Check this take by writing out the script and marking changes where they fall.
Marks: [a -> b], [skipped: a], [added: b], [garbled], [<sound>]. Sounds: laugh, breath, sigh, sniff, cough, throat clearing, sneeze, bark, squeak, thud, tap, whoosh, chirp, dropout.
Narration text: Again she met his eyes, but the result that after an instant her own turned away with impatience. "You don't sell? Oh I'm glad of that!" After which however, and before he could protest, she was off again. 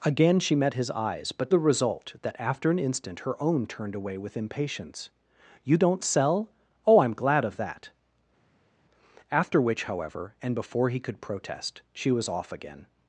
Again she met his eyes, but the result that after an instant her own turned away with impatience. "You don't sell? Oh I'm glad of that!" After which however, and before he could protest, she was off again.